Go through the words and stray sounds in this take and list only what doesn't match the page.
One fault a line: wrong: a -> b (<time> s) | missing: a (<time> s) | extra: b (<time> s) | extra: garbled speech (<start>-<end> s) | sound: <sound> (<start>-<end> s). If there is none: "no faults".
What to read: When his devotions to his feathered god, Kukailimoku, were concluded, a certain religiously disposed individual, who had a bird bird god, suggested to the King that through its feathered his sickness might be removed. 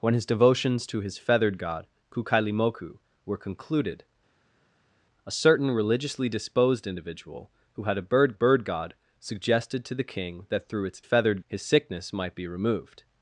no faults